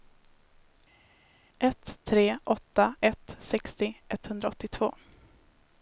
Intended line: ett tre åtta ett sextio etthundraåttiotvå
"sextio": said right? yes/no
yes